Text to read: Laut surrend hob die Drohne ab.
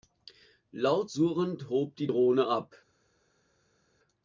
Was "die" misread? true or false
false